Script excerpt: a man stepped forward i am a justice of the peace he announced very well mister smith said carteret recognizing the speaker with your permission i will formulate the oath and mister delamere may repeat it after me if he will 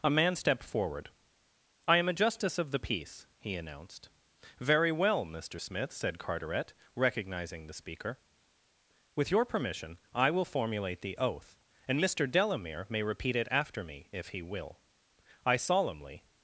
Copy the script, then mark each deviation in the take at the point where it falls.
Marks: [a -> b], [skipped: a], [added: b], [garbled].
a man stepped forward i am a justice of the peace he announced very well mister smith said carteret recognizing the speaker with your permission i will formulate the oath and mister delamere may repeat it after me if he will [added: i solemnly]